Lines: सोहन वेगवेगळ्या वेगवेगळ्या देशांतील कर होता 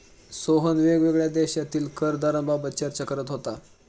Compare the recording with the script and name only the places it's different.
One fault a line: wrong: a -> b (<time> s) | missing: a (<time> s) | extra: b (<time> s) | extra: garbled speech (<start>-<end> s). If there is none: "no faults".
missing: वेगवेगळ्या (1.3 s)
extra: दराबाबत चर्चा करत (2.1 s)